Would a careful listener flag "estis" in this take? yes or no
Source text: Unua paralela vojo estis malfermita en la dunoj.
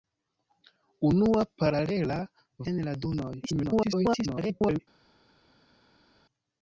yes